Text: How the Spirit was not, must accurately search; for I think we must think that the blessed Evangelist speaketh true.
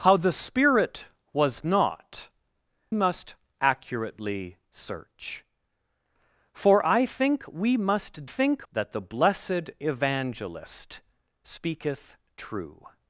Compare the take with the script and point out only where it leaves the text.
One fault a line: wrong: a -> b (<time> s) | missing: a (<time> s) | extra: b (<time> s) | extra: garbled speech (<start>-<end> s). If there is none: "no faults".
no faults